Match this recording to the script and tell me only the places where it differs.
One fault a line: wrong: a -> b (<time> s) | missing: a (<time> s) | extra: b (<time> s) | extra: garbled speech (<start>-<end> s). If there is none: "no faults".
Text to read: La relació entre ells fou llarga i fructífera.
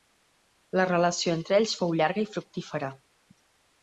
no faults